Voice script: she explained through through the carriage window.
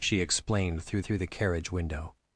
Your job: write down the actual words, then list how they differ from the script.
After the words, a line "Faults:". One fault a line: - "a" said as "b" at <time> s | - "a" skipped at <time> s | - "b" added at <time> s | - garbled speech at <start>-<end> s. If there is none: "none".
she explained through through the carriage window.
Faults:
none